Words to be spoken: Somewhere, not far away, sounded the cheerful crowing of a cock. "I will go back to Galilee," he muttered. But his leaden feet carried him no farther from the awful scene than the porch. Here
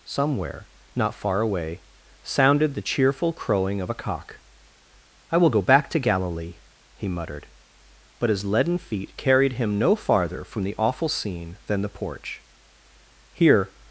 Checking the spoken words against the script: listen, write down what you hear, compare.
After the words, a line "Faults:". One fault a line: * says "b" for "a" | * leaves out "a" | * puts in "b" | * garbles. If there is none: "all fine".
Somewhere, not far away, sounded the cheerful crowing of a cock. "I will go back to Galilee," he muttered. But his leaden feet carried him no farther from the awful scene than the porch. Here
Faults:
all fine